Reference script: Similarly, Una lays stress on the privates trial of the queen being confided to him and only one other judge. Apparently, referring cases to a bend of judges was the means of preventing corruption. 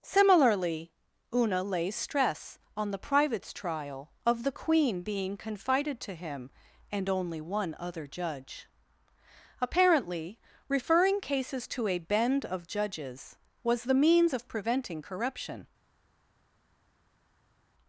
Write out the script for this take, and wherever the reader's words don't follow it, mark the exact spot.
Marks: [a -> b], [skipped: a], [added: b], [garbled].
Similarly, Una lays stress on the privates trial of the queen being confided to him and only one other judge. Apparently, referring cases to a bend of judges was the means of preventing corruption.